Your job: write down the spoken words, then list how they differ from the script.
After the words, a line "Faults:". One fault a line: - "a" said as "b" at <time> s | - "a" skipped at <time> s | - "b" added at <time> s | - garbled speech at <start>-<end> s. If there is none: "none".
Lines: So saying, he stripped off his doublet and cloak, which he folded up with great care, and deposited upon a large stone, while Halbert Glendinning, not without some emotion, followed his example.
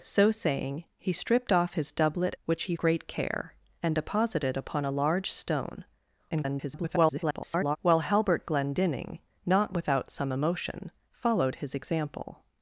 So saying, he stripped off his doublet which he great care, and deposited upon a large stone, [garbled] while Halbert Glendinning, not without some emotion, followed his example.
Faults:
- "and cloak" skipped at 2.4 s
- "folded up with" skipped at 2.7 s
- garbled speech at 6.3-7.8 s